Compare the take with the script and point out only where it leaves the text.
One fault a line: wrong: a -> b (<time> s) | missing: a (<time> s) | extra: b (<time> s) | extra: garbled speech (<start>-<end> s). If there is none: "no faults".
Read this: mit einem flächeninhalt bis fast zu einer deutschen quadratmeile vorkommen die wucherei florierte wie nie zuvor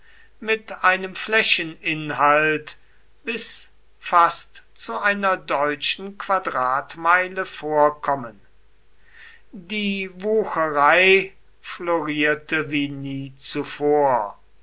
no faults